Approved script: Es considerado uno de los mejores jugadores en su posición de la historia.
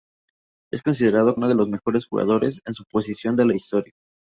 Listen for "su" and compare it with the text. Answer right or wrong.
right